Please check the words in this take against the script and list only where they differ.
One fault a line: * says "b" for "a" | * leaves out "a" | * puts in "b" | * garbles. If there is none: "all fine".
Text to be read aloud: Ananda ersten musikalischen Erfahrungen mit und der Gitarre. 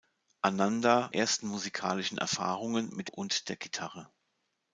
all fine